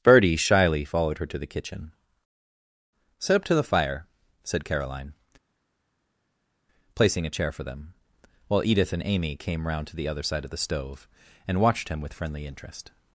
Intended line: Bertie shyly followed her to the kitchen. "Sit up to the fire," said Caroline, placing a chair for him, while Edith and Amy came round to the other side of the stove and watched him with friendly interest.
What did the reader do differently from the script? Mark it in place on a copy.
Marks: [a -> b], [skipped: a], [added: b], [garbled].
Bertie shyly followed her to the kitchen. "Sit up to the fire," said Caroline, placing a chair for [him, -> them] while Edith and Amy came round to the other side of the stove and watched him with friendly interest.